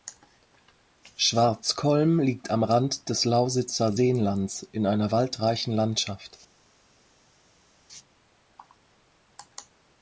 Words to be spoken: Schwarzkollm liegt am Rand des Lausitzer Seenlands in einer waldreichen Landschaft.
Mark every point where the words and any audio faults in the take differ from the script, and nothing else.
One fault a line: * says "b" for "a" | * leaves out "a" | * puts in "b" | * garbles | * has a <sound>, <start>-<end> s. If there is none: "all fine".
all fine